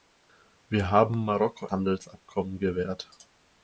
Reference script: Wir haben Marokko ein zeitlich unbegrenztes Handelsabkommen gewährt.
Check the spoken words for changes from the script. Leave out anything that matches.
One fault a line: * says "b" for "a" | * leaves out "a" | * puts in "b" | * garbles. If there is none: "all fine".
* leaves out "ein zeitlich unbegrenztes"